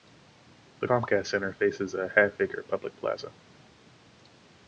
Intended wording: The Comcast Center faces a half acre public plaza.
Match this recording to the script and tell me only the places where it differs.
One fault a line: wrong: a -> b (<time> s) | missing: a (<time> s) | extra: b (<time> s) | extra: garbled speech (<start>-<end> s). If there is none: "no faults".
no faults